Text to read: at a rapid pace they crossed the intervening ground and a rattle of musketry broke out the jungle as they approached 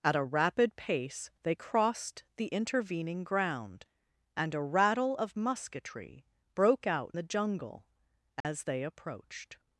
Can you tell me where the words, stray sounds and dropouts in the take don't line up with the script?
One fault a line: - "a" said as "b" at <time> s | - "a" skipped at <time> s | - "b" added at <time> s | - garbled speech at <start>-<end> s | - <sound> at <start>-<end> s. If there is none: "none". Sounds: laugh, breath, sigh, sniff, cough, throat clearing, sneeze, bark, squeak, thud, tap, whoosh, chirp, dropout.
- dropout at 8.4-8.4 s